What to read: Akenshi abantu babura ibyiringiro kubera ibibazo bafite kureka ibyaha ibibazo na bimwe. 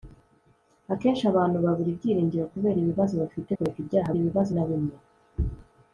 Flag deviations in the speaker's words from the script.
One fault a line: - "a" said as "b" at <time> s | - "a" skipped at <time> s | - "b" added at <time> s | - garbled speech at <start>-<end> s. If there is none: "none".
none